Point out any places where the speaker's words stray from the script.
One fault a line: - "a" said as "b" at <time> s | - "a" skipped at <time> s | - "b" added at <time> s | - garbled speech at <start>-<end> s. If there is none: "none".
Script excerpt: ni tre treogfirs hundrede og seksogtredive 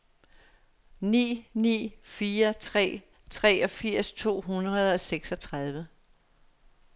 - "ni fire" added at 1.5 s
- "to" added at 4.1 s